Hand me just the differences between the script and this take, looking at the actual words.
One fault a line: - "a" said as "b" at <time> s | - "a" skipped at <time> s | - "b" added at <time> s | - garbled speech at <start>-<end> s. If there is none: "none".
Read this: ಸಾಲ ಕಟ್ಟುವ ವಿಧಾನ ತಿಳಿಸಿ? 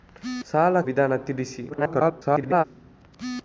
- "ಕಟ್ಟುವ" skipped at 0.8 s
- garbled speech at 1.7-2.6 s